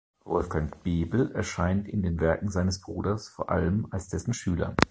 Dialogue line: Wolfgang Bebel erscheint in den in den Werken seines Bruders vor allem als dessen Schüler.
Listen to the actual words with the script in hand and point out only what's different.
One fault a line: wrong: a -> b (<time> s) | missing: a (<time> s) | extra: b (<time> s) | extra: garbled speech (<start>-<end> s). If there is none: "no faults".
missing: in den (2.2 s)